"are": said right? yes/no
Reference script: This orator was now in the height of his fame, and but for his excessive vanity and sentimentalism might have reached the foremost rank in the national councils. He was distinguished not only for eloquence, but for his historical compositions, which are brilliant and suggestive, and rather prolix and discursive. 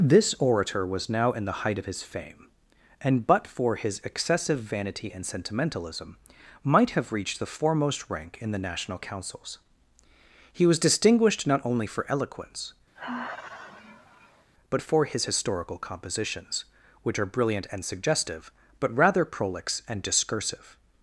yes